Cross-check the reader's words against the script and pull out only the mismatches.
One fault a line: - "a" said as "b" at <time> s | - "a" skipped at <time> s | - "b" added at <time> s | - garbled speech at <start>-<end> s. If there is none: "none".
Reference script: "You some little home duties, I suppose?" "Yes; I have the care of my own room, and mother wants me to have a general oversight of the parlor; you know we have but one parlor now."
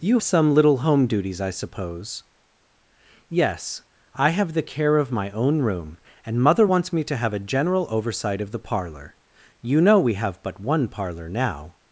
none